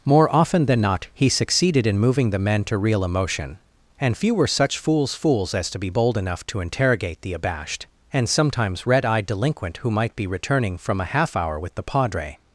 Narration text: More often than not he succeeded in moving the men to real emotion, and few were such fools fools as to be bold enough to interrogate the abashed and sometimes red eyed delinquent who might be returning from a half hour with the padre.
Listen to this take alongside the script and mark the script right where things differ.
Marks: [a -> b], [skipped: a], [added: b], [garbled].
More often than not he succeeded in moving the men to real emotion, and few were such fools fools as to be bold enough to interrogate the abashed and sometimes red eyed delinquent who might be returning from a half hour with the padre.